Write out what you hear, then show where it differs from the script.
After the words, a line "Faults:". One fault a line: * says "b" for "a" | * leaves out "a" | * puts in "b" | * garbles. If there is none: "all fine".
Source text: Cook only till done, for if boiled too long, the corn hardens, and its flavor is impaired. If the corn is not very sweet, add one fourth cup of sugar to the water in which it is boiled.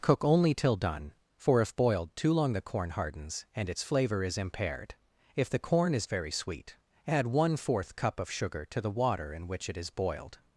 Cook only till done, for if boiled too long, the corn hardens, and its flavor is impaired. If the corn is very sweet, add one fourth cup of sugar to the water in which it is boiled.
Faults:
* leaves out "not"